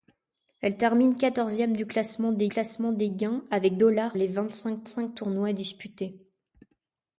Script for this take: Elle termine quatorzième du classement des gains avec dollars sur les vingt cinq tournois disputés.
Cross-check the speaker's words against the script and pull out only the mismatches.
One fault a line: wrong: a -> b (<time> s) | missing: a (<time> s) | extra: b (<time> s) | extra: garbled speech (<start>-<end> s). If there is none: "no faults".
extra: classement des (2.5 s)
missing: sur (4.2 s)
extra: cinq (4.8 s)